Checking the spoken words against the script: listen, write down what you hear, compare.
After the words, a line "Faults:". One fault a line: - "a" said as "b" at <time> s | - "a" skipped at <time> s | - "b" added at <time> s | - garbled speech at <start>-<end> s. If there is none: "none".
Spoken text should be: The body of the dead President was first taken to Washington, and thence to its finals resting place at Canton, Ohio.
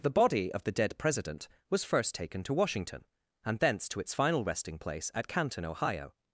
The body of the dead President was first taken to Washington, and thence to its final resting place at Canton, Ohio.
Faults:
- "finals" said as "final" at 4.1 s